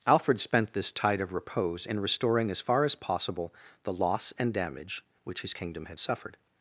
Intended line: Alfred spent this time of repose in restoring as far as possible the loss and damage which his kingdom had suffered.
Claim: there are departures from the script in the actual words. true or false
true